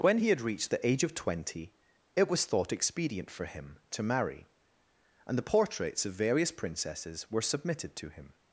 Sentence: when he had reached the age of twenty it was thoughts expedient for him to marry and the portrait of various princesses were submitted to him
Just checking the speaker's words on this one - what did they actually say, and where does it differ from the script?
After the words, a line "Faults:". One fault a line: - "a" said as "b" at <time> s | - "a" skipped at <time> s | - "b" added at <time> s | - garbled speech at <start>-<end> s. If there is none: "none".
when he had reached the age of twenty it was thought expedient for him to marry and the portraits of various princesses were submitted to him
Faults:
- "thoughts" said as "thought" at 2.4 s
- "portrait" said as "portraits" at 5.4 s